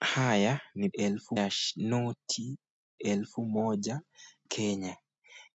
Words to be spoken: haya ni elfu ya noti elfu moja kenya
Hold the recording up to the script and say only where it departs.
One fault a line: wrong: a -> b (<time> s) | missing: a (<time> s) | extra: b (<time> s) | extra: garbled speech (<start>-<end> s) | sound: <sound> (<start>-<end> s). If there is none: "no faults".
no faults